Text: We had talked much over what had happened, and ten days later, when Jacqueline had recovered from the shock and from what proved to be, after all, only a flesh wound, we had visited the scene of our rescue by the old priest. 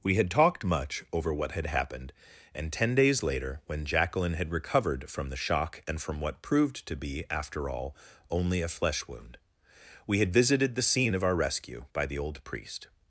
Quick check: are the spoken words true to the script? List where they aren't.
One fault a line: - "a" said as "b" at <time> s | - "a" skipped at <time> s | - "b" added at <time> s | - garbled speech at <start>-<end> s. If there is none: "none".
none